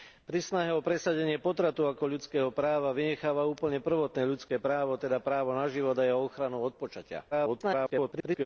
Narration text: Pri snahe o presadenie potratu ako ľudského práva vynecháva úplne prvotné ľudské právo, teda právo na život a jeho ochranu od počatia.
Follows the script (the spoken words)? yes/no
no